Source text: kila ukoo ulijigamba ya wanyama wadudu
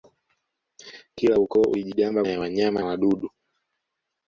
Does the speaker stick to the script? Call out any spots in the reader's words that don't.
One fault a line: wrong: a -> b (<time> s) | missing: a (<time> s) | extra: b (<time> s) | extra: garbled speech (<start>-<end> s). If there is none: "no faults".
no faults